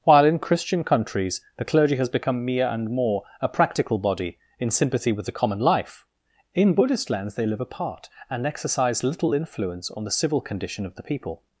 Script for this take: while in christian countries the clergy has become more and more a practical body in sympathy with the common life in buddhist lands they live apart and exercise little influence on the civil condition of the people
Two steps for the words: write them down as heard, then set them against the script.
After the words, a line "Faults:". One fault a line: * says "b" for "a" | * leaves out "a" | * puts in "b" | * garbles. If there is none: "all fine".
while in christian countries the clergy has become mere and more a practical body in sympathy with the common life in buddhist lands they live apart and exercise little influence on the civil condition of the people
Faults:
* says "mere" for "more"